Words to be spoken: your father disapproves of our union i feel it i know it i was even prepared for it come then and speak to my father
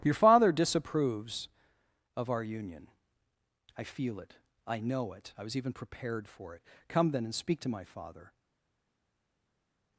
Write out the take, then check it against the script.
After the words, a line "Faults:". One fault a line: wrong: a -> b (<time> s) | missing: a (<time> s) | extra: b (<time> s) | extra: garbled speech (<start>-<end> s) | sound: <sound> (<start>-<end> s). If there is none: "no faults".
your father disapproves of our union i feel it i know it i was even prepared for it come then and speak to my father
Faults:
no faults